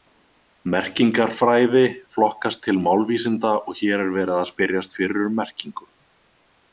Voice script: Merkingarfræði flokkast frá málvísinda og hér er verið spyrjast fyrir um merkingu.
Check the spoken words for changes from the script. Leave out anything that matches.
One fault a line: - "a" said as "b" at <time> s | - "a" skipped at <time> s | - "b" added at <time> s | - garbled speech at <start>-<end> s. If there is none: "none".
- "frá" said as "til" at 2.7 s
- "að" added at 4.4 s